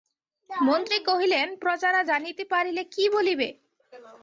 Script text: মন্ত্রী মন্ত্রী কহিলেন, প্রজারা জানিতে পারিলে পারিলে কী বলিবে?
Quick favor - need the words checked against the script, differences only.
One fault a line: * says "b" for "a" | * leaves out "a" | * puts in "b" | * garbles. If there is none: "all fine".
* leaves out "মন্ত্রী"
* leaves out "পারিলে"